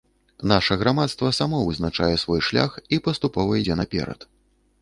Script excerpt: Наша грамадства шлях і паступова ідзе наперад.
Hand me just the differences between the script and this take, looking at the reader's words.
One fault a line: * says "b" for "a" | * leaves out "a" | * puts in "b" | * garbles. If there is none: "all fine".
* puts in "само вызначае свой"